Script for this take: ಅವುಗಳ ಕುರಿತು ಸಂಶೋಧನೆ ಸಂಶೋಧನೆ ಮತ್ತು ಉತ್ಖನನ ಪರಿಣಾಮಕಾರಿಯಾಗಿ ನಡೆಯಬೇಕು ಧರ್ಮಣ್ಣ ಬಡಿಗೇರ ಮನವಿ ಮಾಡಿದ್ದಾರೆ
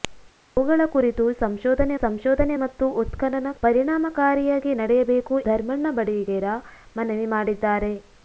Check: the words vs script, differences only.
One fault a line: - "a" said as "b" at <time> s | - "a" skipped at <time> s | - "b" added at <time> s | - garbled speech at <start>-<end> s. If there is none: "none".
none